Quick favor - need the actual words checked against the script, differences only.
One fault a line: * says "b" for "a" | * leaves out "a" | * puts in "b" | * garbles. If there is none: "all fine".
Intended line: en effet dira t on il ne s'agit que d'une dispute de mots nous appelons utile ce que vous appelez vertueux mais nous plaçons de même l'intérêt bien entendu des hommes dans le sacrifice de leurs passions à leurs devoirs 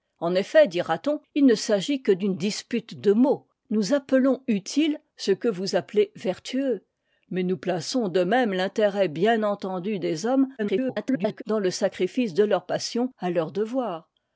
* garbles